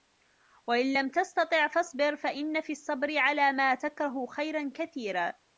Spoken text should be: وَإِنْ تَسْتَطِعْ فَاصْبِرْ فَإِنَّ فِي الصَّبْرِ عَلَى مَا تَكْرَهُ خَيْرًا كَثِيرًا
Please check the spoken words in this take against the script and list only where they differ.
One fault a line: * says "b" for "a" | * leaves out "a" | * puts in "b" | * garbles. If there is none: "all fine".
* puts in "لَمْ"